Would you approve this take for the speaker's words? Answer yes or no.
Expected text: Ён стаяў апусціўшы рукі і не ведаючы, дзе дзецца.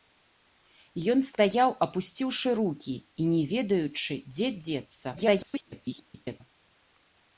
no